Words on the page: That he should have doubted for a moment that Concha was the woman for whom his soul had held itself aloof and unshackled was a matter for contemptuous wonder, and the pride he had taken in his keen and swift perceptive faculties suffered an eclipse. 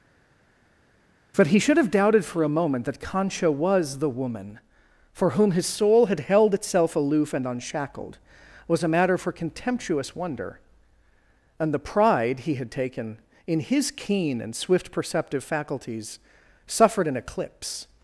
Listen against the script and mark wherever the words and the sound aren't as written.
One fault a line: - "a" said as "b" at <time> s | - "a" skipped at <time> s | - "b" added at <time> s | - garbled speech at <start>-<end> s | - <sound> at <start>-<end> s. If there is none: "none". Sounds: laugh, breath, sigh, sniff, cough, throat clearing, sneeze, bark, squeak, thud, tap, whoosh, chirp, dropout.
- "That" said as "But" at 1.3 s